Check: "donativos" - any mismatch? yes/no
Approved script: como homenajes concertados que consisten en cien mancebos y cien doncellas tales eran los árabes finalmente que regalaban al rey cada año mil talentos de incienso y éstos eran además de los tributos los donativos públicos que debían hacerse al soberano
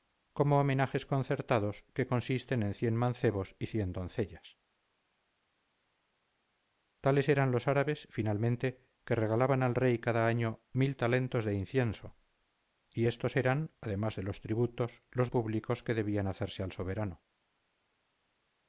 yes